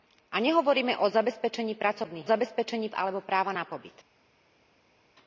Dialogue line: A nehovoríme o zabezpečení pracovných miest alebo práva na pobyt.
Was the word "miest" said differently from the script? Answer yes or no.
yes